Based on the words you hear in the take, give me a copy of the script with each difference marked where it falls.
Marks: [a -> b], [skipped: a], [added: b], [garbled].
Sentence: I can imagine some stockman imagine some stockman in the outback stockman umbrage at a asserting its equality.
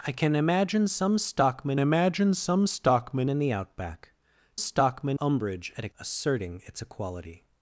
I can imagine some stockman imagine some stockman in the outback stockman umbrage at a asserting its equality.